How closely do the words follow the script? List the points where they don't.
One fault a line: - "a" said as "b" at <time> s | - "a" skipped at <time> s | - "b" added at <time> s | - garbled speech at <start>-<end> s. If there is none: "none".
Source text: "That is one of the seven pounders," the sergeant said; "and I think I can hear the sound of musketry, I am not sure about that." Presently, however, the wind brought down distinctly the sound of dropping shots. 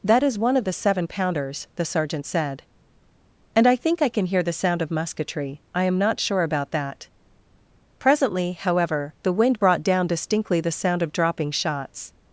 none